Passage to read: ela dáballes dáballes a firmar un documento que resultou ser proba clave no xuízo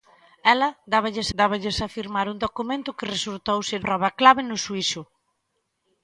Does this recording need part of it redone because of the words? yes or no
no